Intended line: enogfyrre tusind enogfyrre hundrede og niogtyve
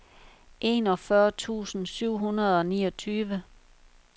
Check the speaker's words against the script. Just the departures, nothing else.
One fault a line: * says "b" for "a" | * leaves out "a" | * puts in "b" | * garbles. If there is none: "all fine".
* says "syv" for "enogfyrre"